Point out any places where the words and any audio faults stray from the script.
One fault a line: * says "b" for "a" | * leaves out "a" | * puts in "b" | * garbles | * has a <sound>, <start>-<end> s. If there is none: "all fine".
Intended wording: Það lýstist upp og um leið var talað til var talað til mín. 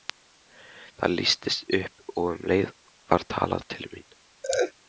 * leaves out "var talað til"
* has a laugh, 4.4-4.7 s